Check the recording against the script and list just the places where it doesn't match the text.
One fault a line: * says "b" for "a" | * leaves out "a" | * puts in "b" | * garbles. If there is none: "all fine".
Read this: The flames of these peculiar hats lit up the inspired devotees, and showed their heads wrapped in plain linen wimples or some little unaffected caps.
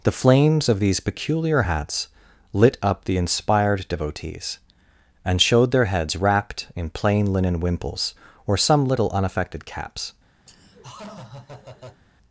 all fine